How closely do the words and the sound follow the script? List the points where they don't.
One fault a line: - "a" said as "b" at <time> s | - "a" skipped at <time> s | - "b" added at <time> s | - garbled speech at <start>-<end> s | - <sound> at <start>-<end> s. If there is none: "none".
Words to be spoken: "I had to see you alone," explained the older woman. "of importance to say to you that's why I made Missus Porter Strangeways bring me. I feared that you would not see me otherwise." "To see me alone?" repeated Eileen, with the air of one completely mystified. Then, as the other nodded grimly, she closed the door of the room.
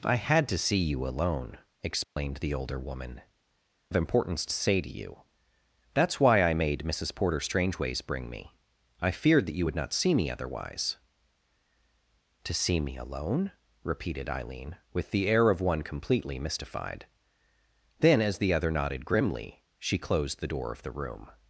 - dropout at 2.0-2.2 s